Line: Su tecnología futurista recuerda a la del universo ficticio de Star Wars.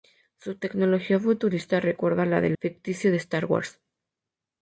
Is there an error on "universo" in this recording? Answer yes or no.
yes